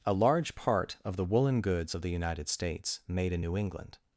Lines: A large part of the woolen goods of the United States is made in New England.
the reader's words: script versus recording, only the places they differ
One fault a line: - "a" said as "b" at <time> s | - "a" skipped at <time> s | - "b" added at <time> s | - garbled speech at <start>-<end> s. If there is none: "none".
- "is" skipped at 3.0 s